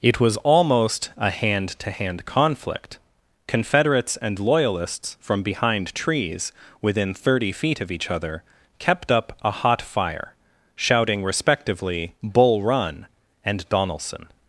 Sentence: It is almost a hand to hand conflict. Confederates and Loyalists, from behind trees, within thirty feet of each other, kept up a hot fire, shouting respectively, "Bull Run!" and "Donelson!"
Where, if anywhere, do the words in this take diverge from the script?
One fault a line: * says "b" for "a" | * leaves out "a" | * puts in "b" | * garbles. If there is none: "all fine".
* says "was" for "is"